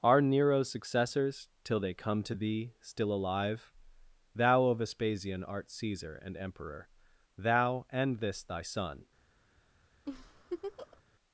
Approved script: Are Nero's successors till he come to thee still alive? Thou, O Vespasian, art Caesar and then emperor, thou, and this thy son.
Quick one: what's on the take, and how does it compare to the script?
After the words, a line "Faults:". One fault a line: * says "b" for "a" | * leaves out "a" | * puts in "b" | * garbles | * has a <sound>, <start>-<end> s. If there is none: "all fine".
Are Nero's successors till they come to thee still alive? Thou, O Vespasian, art Caesar and emperor, thou, and this thy son.
Faults:
* says "they" for "he"
* leaves out "then"
* has a laugh, 10.1-11.0 s